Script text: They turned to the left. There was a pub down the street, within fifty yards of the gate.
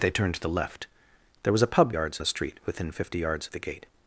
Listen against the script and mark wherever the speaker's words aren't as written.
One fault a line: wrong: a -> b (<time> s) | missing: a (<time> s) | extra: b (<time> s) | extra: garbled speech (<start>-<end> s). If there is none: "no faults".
wrong: down -> yards (1.9 s)